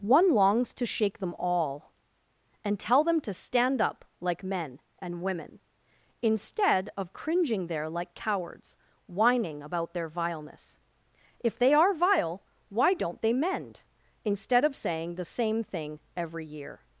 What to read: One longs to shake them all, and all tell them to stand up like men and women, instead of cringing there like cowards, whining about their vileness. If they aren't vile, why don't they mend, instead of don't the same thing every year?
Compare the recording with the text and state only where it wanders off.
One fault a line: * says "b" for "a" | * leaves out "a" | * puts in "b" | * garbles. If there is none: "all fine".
* leaves out "all"
* says "are" for "aren't"
* says "saying" for "don't"